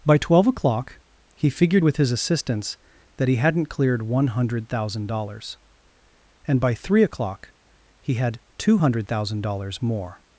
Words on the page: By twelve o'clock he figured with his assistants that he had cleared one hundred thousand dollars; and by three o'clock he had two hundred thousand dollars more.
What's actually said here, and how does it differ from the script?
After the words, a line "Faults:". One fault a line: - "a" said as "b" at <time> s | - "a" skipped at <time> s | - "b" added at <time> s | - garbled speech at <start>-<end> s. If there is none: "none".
By twelve o'clock he figured with his assistants that he hadn't cleared one hundred thousand dollars; and by three o'clock he had two hundred thousand dollars more.
Faults:
- "had" said as "hadn't" at 3.3 s